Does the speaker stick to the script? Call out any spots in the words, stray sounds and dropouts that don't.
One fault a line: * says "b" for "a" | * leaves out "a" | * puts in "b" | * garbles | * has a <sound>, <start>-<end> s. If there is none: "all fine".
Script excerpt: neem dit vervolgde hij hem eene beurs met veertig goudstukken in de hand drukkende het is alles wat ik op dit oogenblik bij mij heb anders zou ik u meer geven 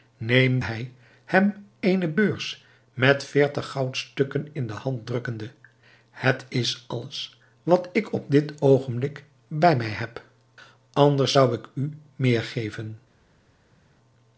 * leaves out "dit vervolgde"